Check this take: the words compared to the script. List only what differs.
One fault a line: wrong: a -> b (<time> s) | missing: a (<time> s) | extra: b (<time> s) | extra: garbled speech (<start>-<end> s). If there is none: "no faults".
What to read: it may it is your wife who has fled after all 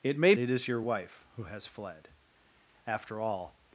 no faults